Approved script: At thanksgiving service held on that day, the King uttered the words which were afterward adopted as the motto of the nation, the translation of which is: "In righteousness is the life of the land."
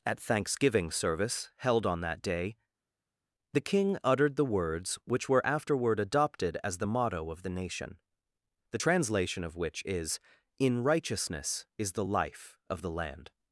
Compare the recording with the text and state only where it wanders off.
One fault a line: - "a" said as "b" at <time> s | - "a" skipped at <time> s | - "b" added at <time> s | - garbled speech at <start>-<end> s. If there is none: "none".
none